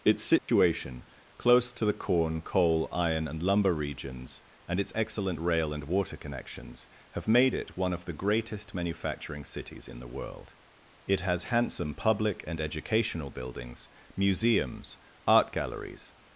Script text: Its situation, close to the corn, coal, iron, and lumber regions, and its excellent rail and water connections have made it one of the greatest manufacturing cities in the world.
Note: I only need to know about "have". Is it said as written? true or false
true